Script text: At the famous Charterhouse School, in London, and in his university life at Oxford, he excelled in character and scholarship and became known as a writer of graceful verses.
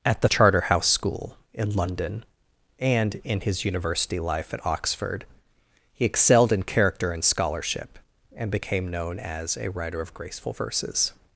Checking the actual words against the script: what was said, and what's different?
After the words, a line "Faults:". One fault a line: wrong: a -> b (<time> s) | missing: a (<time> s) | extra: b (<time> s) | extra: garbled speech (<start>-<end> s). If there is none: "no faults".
At the Charterhouse School, in London, and in his university life at Oxford, he excelled in character and scholarship and became known as a writer of graceful verses.
Faults:
missing: famous (0.3 s)